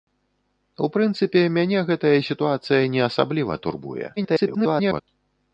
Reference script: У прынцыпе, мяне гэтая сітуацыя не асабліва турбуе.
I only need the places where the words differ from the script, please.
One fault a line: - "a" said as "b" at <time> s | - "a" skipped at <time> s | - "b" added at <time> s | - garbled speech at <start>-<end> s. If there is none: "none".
- garbled speech at 4.2-5.0 s